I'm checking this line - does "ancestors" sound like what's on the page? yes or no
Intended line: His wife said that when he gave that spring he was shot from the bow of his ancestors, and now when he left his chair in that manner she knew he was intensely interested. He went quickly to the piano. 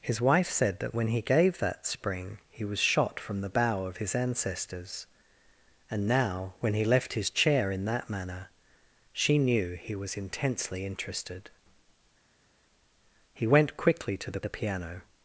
yes